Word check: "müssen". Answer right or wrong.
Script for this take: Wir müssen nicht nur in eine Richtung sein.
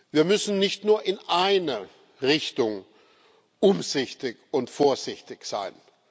right